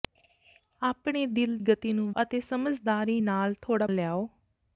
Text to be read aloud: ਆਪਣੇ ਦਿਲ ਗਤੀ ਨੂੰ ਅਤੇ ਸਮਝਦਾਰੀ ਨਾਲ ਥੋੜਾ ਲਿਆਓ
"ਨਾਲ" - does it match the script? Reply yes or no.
yes